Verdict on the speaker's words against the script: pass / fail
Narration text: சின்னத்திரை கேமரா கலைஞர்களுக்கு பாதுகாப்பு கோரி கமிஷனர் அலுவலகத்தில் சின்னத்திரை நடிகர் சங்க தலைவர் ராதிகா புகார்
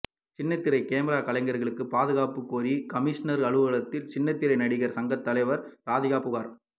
pass